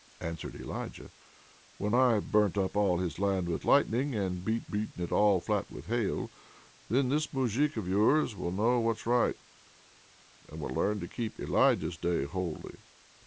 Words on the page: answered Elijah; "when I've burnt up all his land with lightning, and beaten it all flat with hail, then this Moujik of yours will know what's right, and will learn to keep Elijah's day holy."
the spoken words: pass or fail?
fail